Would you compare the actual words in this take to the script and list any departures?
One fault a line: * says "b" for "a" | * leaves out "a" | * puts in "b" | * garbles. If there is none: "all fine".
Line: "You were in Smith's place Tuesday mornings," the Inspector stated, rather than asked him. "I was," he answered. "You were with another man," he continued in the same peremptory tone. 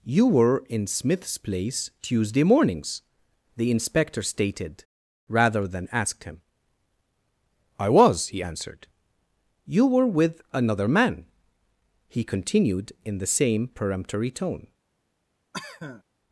all fine